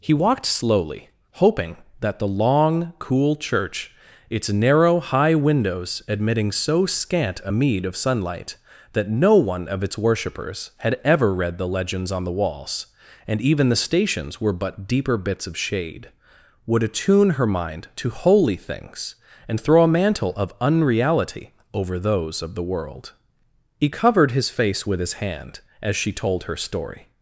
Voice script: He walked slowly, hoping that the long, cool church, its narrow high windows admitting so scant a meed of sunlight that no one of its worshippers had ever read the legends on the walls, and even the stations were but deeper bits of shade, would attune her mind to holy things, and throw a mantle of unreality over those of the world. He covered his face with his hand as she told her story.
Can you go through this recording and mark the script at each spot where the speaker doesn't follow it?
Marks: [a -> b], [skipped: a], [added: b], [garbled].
He walked slowly, hoping that the long, cool church, its narrow high windows admitting so scant a meed of sunlight that no one of its worshippers had ever read the legends on the walls, and even the stations were but deeper bits of shade, would attune her mind to holy things, and throw a mantle of unreality over those of the world. He covered his face with his hand as she told her story.